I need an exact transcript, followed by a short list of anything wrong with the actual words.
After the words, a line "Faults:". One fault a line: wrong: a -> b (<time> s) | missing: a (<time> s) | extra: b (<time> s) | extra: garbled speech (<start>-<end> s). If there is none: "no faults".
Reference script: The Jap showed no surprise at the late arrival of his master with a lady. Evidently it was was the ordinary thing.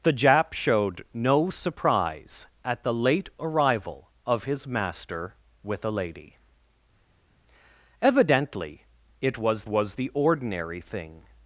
The Jap showed no surprise at the late arrival of his master with a lady. Evidently it was was the ordinary thing.
Faults:
no faults